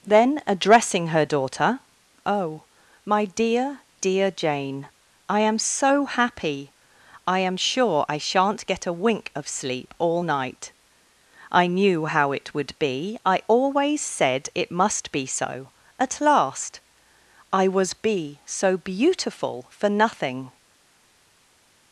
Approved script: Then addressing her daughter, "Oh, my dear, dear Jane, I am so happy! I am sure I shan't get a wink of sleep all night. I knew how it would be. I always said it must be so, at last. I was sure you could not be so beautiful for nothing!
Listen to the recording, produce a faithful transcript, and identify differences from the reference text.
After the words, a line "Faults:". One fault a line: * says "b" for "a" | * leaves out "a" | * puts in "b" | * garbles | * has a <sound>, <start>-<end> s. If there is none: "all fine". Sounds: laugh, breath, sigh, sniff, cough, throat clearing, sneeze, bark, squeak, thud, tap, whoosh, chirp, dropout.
Then addressing her daughter, "Oh, my dear, dear Jane, I am so happy! I am sure I shan't get a wink of sleep all night. I knew how it would be. I always said it must be so, at last. I was be so beautiful for nothing!
Faults:
* leaves out "sure you could not"